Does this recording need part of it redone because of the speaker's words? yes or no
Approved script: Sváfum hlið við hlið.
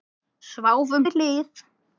yes